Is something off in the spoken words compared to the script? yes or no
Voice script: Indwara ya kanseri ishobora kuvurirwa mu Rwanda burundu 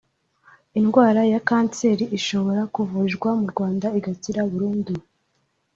yes